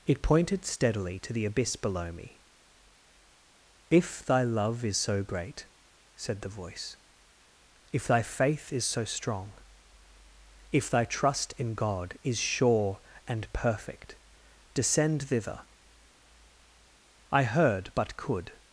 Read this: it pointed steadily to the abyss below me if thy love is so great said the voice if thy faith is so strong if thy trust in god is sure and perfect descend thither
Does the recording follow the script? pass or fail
fail